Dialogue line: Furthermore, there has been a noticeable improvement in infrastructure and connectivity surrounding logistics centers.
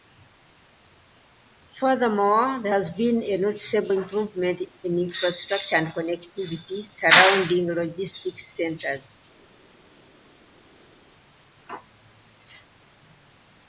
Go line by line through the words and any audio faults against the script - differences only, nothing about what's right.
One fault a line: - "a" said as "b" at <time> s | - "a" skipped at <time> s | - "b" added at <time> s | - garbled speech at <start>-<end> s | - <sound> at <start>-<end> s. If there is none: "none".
none